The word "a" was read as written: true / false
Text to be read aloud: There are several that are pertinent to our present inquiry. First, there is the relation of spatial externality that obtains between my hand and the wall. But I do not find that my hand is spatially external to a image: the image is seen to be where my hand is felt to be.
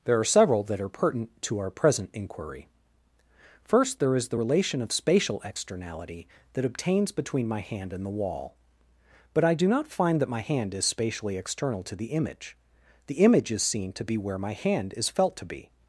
false